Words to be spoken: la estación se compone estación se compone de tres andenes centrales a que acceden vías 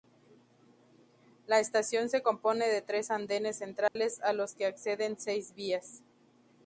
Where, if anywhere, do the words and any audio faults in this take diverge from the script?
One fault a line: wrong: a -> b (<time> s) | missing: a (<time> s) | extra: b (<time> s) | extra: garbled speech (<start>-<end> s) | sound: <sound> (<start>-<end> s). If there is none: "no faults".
missing: estación se compone (2.7 s)
sound: dropout (3.9-4.0 s)
extra: los (4.3 s)
extra: seis (5.2 s)